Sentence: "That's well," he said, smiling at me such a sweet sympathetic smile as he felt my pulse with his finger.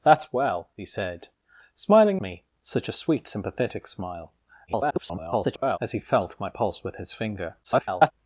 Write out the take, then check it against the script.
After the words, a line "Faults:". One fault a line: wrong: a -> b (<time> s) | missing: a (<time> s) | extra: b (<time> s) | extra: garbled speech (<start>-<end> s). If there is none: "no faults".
"That's well," he said, smiling me such a sweet sympathetic smile [garbled] as he felt my pulse with his finger. [garbled]
Faults:
missing: at (2.2 s)
extra: garbled speech (4.7-5.8 s)
extra: garbled speech (7.6-8.1 s)